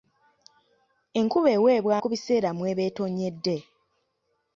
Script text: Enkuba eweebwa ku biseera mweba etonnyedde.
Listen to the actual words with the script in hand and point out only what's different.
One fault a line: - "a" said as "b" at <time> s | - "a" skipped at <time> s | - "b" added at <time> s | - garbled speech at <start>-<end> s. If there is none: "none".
none